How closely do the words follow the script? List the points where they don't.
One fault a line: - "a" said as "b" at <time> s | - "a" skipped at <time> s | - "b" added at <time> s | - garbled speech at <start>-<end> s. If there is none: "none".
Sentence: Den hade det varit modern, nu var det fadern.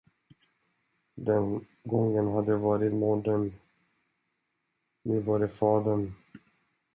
- "gången" added at 1.8 s